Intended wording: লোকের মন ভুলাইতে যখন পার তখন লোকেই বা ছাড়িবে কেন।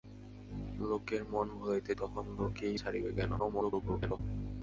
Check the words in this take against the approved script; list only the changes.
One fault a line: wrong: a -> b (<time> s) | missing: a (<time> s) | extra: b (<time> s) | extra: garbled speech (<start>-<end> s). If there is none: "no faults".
missing: যখন পার (1.9 s)
missing: বা (2.8 s)
extra: garbled speech (3.4-4.2 s)